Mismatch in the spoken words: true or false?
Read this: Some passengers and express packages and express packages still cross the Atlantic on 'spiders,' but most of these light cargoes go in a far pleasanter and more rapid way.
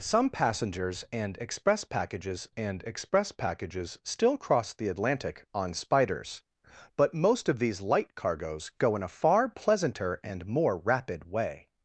false